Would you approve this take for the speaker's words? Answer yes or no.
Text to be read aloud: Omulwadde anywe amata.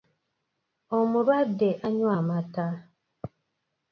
yes